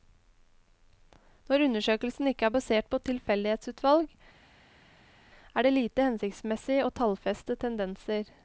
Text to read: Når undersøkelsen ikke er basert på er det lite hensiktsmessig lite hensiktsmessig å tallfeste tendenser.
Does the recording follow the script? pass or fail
fail